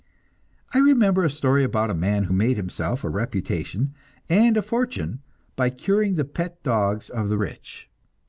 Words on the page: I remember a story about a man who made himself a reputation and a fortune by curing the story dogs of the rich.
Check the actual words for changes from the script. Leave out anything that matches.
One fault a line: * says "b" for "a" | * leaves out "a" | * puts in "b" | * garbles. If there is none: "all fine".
* says "pet" for "story"